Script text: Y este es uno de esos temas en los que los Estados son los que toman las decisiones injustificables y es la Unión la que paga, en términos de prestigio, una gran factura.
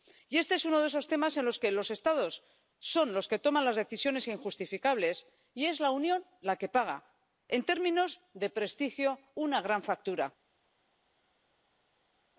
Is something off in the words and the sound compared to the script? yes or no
no